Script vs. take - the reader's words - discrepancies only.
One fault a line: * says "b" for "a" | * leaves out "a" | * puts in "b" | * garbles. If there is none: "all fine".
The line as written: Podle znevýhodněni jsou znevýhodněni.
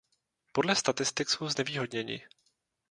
* says "statistik" for "znevýhodněni"